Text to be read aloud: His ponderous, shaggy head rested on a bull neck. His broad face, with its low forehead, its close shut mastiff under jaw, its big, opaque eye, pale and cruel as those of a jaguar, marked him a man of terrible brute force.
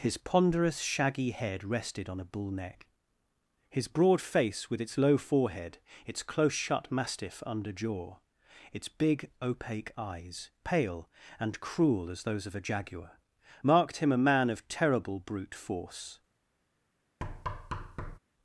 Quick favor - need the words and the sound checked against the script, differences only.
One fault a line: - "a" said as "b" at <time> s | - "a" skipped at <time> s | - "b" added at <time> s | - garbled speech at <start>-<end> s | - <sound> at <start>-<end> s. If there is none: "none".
- "eye" said as "eyes" at 10.0 s
- thud at 17.2-18.2 s